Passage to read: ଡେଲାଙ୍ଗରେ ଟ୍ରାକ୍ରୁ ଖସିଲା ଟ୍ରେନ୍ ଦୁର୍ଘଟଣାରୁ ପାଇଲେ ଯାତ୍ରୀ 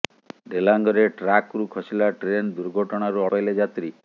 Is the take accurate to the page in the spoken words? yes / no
yes